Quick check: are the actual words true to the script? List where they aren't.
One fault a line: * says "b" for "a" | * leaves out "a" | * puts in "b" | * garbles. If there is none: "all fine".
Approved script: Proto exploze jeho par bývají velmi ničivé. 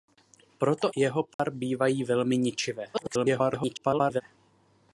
* leaves out "exploze"
* garbles